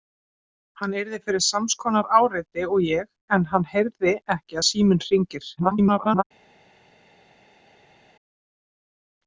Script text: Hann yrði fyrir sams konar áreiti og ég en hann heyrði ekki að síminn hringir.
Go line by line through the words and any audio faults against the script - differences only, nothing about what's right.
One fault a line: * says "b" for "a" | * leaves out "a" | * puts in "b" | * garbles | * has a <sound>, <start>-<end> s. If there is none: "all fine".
* garbles